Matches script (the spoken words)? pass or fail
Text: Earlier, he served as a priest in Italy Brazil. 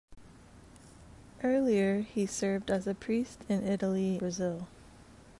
pass